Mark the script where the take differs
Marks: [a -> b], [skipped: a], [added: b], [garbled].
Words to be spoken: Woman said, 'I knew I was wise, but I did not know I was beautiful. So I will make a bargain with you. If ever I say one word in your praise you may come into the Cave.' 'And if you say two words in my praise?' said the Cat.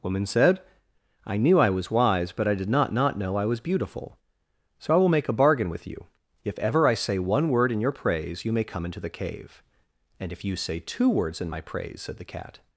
Woman said, 'I knew I was wise, but I did not [added: not] know I was beautiful. So I will make a bargain with you. If ever I say one word in your praise you may come into the Cave.' 'And if you say two words in my praise?' said the Cat.